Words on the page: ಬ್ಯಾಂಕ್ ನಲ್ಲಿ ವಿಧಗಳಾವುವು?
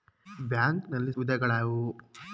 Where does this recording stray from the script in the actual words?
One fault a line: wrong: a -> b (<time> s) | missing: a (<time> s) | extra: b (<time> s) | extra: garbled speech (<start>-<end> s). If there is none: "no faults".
no faults